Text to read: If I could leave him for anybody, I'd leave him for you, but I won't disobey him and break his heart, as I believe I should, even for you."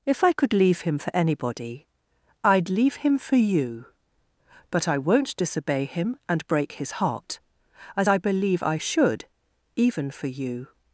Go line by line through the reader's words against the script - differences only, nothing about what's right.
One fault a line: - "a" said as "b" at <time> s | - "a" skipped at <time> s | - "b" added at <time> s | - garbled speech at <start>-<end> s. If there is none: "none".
none